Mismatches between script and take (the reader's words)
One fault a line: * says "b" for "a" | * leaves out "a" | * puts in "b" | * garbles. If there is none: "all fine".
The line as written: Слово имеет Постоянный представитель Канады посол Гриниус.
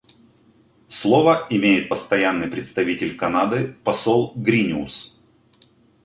all fine